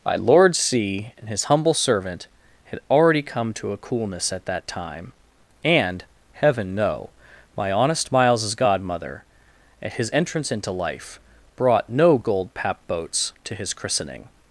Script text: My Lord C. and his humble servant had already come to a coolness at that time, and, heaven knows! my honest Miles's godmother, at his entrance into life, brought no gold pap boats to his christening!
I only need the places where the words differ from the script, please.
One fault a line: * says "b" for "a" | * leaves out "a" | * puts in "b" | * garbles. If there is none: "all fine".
* says "know" for "knows"